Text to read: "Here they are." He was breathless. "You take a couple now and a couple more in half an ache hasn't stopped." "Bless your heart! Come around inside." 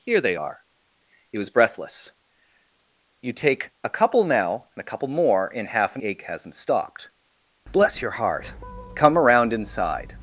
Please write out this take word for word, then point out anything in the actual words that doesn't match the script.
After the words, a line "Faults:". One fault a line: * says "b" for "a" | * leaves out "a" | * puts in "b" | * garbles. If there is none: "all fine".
"Here they are." He was breathless. "You take a couple now and a couple more in half an ache hasn't stopped." "Bless your heart! Come around inside."
Faults:
all fine